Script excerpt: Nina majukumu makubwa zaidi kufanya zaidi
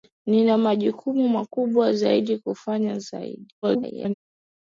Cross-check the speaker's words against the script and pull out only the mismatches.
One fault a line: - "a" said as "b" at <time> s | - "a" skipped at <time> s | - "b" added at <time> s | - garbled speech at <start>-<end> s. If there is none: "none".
- garbled speech at 3.6-4.1 s